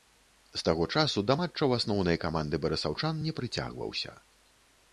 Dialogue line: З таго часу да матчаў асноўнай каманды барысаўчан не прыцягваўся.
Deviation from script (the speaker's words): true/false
false